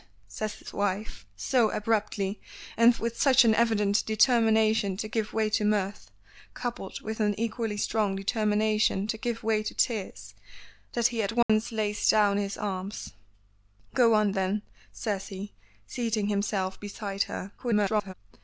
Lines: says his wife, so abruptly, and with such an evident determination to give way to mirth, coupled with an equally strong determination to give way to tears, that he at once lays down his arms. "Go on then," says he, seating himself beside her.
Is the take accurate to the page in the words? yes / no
no